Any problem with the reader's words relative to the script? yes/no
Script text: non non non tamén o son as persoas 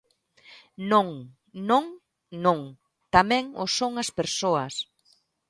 no